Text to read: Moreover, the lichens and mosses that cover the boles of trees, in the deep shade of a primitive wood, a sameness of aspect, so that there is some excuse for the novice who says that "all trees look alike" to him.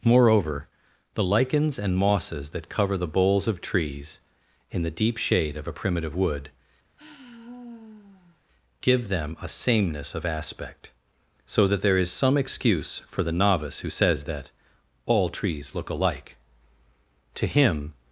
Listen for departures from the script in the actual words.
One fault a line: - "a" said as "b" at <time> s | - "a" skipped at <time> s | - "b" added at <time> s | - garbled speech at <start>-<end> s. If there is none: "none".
- "give them" added at 8.8 s